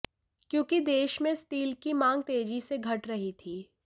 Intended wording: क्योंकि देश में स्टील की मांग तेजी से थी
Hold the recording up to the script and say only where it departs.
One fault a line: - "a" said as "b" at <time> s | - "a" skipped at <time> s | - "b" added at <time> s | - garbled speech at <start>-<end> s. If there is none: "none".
- "घट रही" added at 2.8 s